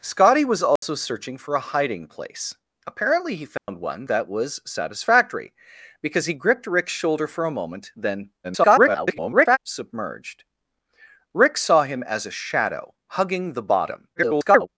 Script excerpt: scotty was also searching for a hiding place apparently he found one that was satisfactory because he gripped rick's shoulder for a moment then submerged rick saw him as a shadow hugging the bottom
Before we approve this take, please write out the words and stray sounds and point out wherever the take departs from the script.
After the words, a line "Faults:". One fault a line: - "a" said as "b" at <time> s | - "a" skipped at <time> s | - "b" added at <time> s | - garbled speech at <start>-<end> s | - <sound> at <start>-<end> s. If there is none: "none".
scotty was also searching for a hiding place apparently he found one that was satisfactory because he gripped rick's shoulder for a moment then [garbled] submerged rick saw him as a shadow hugging the bottom [garbled]
Faults:
- dropout at 0.8-0.8 s
- dropout at 3.6-3.7 s
- garbled speech at 8.4-9.6 s
- garbled speech at 14.2-14.7 s